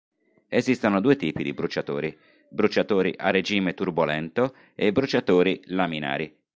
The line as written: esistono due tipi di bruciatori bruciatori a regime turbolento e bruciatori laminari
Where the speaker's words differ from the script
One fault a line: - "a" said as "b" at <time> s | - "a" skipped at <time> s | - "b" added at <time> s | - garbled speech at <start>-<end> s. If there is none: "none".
none